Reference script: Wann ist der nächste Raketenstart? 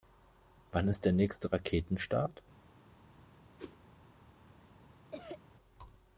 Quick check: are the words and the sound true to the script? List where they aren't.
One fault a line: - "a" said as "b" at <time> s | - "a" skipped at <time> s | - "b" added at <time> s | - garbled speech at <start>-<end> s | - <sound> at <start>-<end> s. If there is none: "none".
- whoosh at 3.6-3.8 s
- cough at 5.1-5.4 s